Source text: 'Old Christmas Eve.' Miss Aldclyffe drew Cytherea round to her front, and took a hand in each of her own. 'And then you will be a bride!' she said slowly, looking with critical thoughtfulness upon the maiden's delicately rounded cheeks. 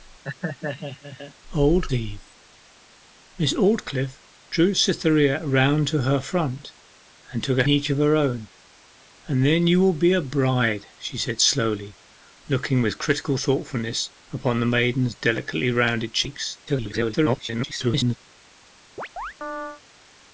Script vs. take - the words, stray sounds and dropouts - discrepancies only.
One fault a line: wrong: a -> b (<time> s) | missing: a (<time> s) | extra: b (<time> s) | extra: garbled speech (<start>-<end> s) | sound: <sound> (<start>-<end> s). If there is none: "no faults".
sound: laugh (0.2-1.3 s)
missing: Christmas (1.9 s)
missing: hand in (7.6 s)
extra: garbled speech (16.7-18.2 s)
sound: chirp (19.0-19.8 s)